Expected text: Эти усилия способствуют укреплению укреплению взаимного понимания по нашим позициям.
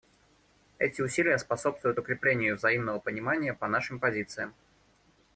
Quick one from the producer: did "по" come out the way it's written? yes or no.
yes